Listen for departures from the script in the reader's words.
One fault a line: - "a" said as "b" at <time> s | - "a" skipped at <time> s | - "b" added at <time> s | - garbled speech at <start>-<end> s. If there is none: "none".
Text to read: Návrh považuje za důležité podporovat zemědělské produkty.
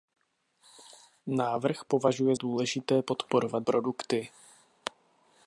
- "za" skipped at 2.4 s
- "zemědělské" skipped at 3.7 s